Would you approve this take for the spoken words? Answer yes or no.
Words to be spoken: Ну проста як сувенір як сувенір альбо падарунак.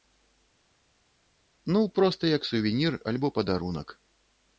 no